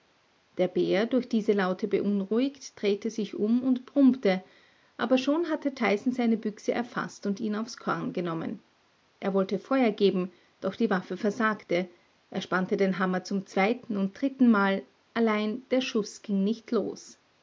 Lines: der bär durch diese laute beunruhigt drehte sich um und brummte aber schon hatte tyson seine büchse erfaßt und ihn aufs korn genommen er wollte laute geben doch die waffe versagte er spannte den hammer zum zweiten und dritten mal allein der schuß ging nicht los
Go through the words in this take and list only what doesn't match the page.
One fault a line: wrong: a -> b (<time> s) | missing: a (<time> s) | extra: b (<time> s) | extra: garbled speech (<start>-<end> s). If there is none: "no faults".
wrong: laute -> feuer (9.6 s)